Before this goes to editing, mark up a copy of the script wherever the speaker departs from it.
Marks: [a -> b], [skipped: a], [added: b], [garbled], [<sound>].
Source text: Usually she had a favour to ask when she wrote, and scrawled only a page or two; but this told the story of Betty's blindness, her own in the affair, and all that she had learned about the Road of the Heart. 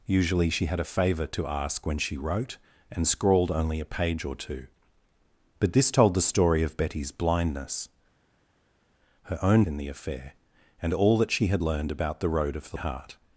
Usually she had a favour to ask when she wrote, and scrawled only a page or two; but this told the story of Betty's blindness, her own in the affair, and all that she had learned about the Road of the Heart.